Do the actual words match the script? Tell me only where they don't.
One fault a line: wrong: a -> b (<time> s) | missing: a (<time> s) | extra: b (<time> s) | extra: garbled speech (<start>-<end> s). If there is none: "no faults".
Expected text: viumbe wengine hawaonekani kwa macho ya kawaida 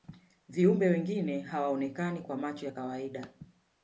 no faults